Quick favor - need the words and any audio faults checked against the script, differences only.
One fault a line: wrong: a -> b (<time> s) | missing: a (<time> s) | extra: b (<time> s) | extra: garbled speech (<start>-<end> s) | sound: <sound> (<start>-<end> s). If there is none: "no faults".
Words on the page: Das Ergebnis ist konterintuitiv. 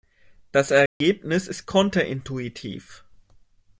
sound: dropout (0.9-1.0 s)